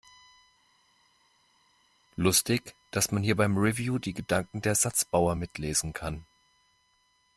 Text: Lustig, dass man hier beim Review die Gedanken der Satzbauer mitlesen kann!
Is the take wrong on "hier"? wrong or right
right